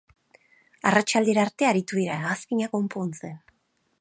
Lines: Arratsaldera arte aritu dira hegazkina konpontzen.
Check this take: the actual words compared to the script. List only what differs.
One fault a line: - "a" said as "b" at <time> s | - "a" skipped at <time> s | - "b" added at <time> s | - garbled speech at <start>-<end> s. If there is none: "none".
none